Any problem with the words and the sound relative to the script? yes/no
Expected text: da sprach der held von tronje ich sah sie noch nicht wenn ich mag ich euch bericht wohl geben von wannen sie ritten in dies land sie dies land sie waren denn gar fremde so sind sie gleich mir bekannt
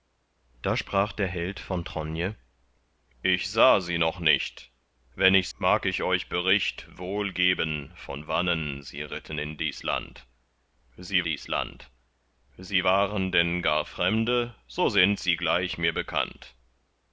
no